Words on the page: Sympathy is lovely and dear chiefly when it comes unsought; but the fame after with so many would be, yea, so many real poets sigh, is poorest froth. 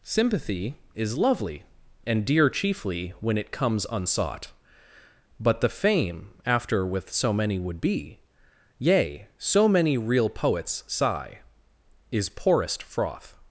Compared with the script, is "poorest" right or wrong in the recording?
right